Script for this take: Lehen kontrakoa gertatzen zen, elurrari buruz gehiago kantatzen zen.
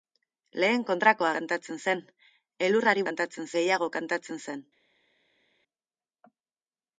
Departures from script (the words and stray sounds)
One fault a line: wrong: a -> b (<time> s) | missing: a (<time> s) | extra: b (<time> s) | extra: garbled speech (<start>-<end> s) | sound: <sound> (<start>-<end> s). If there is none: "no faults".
wrong: gertatzen -> kantatzen (1.4 s)
wrong: buruz -> kantatzen (3.1 s)